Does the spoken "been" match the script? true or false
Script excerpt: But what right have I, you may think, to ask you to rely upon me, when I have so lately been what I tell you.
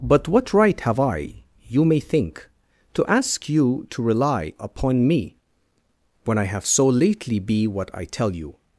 false